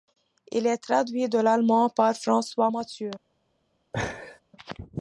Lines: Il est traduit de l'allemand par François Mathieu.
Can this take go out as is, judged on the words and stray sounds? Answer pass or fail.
fail